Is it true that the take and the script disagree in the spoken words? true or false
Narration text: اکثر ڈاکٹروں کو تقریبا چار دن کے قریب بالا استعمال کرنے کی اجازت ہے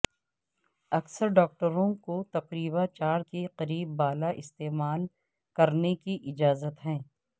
true